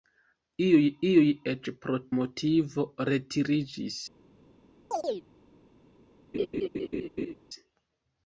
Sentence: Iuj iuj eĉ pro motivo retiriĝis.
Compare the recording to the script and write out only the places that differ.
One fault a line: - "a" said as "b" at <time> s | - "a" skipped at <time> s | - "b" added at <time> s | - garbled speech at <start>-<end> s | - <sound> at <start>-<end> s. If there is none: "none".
- chirp at 4.9-5.3 s
- laugh at 6.3-7.3 s